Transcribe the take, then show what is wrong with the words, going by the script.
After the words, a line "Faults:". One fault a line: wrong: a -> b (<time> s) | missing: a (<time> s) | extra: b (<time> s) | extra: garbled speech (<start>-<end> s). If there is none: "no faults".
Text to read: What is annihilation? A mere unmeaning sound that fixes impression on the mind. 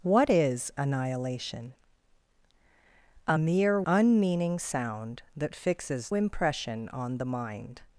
What is annihilation? A mere unmeaning sound that fixes impression on the mind.
Faults:
no faults